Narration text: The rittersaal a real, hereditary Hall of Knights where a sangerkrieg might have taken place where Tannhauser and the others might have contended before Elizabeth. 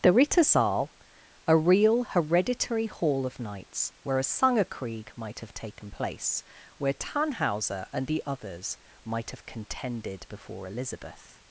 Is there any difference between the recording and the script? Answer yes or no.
no